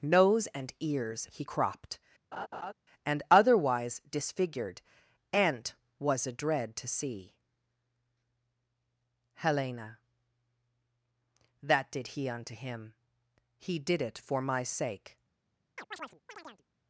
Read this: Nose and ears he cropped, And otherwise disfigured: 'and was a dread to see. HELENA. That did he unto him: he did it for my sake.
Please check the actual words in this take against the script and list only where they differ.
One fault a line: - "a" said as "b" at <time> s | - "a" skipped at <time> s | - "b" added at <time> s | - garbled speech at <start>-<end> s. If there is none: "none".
none